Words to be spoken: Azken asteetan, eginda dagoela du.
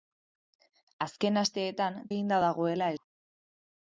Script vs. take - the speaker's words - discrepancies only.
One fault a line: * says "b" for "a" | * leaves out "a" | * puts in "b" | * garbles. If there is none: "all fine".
all fine